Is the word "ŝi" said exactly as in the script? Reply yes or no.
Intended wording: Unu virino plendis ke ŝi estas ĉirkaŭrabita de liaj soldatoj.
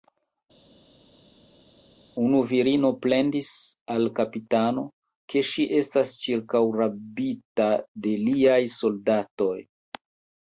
yes